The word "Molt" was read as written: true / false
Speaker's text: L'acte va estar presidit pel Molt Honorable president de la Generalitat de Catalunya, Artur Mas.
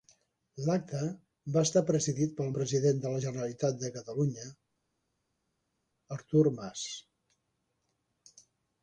false